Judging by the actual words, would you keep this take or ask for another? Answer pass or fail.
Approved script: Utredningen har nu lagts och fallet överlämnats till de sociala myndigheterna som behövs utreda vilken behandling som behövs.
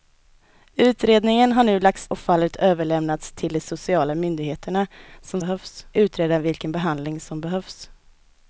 pass